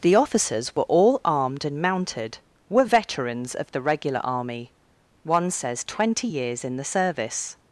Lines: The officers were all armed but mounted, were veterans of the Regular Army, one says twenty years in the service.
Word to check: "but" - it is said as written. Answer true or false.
false